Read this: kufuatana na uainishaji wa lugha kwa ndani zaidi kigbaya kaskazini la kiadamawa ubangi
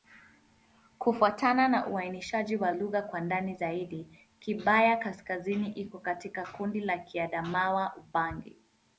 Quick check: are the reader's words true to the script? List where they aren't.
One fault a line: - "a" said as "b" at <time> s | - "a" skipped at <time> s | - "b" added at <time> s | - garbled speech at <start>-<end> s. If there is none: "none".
- "iko katika kundi" added at 5.7 s